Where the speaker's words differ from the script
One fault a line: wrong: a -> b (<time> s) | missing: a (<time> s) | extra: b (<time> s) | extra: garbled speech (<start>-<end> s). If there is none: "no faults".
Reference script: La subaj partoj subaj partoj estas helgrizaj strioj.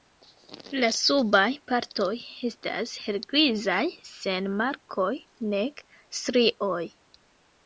wrong: subaj partoj estas helgrizaj -> estas helgrizaj sen markoj nek (2.5 s)